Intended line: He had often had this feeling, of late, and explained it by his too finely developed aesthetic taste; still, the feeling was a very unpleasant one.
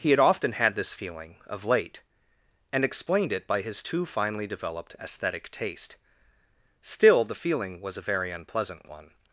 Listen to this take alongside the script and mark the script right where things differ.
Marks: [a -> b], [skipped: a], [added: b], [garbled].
He had often had this feeling, of late, and explained it by his too finely developed aesthetic taste; still, the feeling was a very unpleasant one.